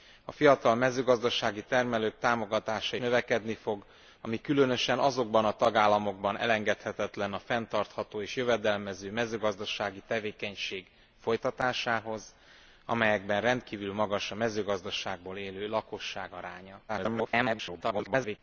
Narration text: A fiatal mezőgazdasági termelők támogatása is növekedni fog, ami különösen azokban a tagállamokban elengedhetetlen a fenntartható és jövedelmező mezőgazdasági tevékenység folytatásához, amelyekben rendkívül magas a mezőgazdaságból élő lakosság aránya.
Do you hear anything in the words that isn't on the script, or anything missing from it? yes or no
yes